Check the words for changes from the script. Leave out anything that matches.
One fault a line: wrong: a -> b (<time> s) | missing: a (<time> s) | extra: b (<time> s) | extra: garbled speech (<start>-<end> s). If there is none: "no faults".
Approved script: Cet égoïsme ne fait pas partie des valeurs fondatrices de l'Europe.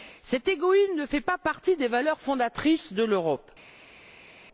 no faults